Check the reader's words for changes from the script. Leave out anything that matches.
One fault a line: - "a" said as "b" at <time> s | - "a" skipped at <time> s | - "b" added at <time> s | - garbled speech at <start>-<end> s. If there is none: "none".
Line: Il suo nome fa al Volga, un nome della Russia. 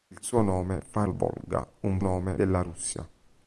none